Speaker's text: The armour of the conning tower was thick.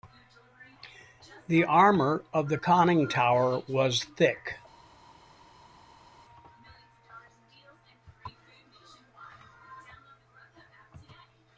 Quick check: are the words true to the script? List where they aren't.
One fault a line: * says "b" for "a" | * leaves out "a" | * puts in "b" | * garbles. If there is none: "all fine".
all fine